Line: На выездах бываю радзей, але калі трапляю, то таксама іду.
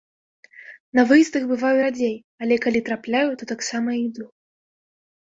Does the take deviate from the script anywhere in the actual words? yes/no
no